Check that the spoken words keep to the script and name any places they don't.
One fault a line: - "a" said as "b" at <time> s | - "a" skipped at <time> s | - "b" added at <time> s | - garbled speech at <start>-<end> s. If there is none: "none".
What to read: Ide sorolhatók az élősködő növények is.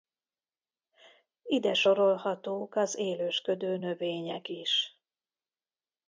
none